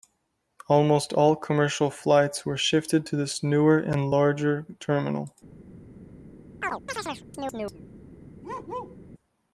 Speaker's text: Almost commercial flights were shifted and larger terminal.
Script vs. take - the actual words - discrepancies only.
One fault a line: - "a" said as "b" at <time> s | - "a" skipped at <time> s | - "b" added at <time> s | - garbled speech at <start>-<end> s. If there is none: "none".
- "all" added at 1.1 s
- "to this newer" added at 3.1 s